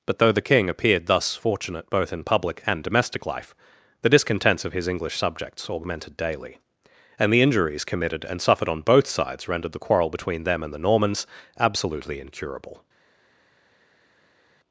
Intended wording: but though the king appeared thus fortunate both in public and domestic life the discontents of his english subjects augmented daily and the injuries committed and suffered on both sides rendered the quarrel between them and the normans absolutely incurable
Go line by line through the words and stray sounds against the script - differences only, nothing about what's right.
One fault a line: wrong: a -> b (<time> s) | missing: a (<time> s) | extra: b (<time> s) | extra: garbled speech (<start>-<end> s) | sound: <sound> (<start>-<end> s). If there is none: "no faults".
no faults